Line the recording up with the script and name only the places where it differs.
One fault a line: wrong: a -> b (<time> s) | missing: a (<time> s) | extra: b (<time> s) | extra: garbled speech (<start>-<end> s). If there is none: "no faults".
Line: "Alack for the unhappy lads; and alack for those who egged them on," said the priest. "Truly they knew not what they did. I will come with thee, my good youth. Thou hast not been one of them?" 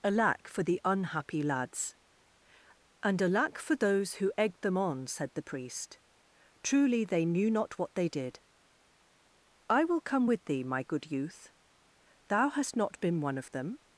no faults